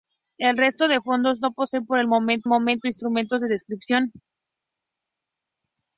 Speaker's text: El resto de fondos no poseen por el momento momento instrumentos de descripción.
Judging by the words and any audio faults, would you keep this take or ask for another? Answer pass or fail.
pass